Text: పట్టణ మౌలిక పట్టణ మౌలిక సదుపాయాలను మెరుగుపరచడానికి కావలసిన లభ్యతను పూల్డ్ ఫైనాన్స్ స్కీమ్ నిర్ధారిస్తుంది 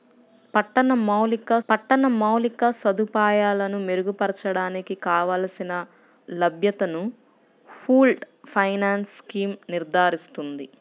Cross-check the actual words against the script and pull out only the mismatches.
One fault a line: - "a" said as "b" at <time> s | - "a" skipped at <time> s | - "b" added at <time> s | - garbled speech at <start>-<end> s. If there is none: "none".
none